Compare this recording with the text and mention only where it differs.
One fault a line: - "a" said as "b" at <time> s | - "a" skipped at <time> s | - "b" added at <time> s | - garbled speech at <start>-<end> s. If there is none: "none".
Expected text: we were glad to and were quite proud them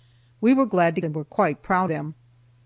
none